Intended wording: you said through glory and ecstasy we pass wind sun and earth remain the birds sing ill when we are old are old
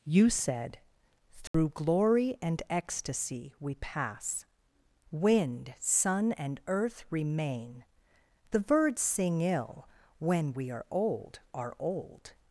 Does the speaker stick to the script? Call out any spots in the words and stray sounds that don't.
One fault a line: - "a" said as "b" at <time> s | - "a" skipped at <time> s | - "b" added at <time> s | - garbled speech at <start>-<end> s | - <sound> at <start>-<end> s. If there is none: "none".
- dropout at 1.5-1.5 s